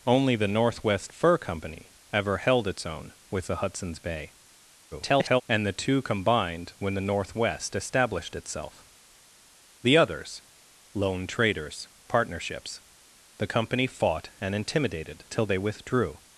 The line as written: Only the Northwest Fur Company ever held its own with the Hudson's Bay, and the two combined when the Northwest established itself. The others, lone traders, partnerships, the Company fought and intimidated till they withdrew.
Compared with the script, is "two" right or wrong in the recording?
right